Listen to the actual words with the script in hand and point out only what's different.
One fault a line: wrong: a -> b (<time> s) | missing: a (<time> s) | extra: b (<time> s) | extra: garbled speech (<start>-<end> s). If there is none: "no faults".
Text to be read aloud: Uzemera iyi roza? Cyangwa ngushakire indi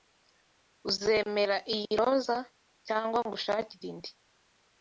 no faults